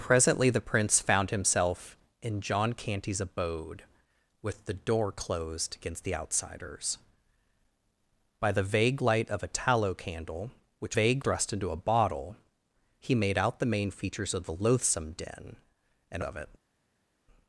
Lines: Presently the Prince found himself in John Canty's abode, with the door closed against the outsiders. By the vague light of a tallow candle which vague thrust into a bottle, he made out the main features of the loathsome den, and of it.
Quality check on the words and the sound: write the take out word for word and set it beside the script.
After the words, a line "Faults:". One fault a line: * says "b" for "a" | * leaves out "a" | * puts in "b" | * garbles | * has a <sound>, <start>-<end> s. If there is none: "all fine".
Presently the Prince found himself in John Canty's abode, with the door closed against the outsiders. By the vague light of a tallow candle which vague thrust into a bottle, he made out the main features of the loathsome den, and of it.
Faults:
all fine